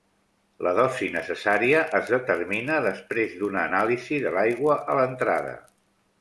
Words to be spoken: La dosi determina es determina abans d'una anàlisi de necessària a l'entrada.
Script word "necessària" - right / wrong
wrong